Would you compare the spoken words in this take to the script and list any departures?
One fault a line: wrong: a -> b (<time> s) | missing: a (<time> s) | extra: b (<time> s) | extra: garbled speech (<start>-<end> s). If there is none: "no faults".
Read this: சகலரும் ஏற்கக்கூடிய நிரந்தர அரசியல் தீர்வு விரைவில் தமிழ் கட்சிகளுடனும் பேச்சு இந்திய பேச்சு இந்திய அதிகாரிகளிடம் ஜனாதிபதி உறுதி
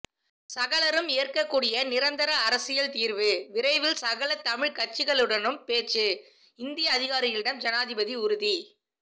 extra: சகல (4.0 s)
missing: பேச்சு இந்திய (6.9 s)